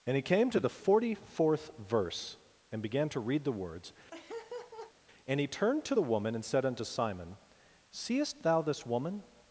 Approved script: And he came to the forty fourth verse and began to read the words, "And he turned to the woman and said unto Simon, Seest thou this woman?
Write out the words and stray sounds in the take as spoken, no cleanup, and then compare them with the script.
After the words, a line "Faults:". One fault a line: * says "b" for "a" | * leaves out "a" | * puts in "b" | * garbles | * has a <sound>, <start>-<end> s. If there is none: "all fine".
And he came to the forty fourth verse and began to read the words, "And he turned to the woman and said unto Simon, Seest thou this woman?
Faults:
* has a laugh, 4.1-4.9 s